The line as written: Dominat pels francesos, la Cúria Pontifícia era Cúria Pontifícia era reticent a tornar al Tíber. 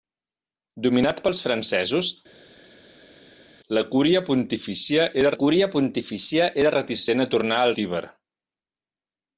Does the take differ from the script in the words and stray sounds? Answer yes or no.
no